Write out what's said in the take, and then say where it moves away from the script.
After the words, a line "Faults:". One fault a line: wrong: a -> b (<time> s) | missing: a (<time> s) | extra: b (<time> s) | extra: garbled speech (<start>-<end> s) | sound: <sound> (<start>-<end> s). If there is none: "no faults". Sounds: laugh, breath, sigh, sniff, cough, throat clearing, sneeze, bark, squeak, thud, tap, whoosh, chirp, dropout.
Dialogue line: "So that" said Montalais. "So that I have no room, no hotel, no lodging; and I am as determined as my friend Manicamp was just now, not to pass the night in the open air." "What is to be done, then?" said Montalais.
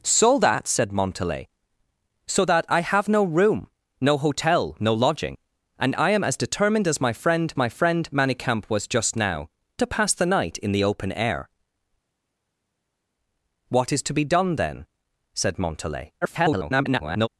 "So that" said Montalais. "So that I have no room, no hotel, no lodging; and I am as determined as my friend my friend Manicamp was just now, to pass the night in the open air." "What is to be done, then?" said Montalais. [garbled]
Faults:
extra: my friend (7.6 s)
missing: not (9.5 s)
extra: garbled speech (16.2-17.3 s)